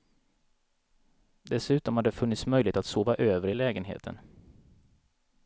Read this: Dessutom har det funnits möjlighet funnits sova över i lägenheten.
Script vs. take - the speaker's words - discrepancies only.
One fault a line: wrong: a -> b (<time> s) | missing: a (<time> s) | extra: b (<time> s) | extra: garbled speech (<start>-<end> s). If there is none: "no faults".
wrong: funnits -> att (2.8 s)